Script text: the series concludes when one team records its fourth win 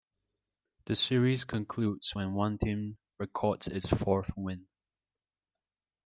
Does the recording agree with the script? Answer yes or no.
yes